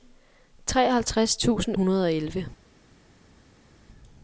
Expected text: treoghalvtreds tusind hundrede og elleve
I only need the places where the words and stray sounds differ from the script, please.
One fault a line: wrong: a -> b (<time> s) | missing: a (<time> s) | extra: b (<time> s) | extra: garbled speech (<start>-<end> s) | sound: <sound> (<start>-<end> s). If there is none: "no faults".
no faults